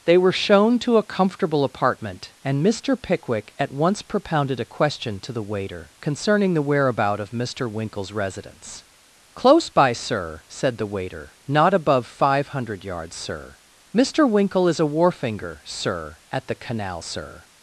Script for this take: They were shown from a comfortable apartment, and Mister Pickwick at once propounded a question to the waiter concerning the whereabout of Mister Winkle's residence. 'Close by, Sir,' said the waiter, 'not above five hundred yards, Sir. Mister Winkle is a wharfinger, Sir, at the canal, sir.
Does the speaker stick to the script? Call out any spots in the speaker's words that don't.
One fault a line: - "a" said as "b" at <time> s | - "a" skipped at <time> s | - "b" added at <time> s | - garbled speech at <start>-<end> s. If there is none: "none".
- "from" said as "to" at 0.8 s